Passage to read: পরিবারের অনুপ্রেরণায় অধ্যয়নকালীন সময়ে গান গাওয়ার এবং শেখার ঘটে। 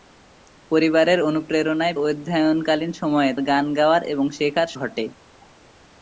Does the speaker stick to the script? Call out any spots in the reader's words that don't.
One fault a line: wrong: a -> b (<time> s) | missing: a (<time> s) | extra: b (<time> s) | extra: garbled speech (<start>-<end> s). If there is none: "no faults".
no faults